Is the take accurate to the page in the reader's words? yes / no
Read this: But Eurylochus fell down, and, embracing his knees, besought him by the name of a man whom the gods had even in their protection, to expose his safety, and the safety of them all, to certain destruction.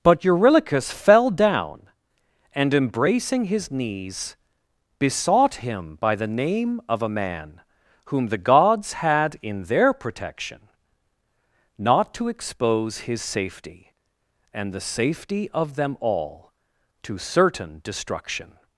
no